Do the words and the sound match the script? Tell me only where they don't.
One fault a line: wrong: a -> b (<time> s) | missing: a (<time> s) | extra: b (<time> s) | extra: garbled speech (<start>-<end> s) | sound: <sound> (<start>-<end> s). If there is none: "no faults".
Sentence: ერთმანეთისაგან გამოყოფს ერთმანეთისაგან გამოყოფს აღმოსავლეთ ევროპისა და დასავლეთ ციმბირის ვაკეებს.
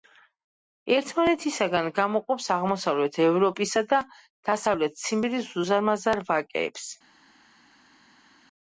missing: ერთმანეთისაგან გამოყოფს (2.5 s)
extra: უზარმაზარ (5.6 s)